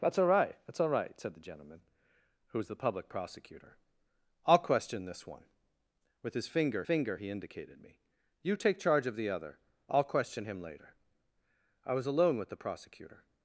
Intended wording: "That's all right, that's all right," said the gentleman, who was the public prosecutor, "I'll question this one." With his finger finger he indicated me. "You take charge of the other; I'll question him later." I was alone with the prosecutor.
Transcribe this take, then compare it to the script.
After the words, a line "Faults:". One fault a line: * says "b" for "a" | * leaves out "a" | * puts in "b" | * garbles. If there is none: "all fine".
"That's all right, that's all right," said the gentleman, who was the public prosecutor, "I'll question this one." With his finger finger he indicated me. "You take charge of the other; I'll question him later." I was alone with the prosecutor.
Faults:
all fine